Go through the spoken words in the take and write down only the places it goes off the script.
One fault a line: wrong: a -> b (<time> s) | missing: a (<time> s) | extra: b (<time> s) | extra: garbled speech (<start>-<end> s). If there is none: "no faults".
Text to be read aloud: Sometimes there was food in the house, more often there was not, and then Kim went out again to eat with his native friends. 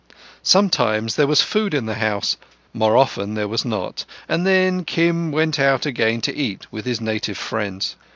no faults